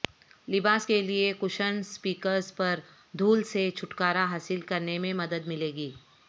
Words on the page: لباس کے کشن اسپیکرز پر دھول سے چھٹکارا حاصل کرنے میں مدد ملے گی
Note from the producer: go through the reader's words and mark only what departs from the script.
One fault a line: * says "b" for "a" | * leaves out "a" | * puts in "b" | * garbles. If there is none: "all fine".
* puts in "لئے"